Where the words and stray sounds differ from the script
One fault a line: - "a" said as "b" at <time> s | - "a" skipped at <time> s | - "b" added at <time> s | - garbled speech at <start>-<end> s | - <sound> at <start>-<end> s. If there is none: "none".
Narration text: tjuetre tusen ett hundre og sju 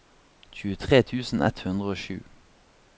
none